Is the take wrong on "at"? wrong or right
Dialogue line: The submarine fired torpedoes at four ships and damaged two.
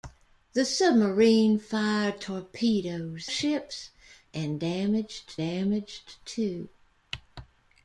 wrong